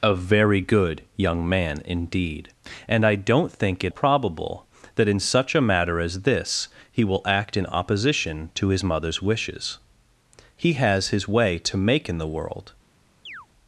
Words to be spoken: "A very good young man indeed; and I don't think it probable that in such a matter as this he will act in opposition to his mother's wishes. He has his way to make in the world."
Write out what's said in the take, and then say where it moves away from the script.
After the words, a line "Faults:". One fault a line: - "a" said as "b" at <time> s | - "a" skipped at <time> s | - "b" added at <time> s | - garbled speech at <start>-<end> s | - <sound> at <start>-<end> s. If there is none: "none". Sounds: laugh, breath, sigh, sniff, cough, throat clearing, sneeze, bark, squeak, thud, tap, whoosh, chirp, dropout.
"A very good young man indeed; and I don't think it probable that in such a matter as this he will act in opposition to his mother's wishes. He has his way to make in the world."
Faults:
- chirp at 13.3-13.5 s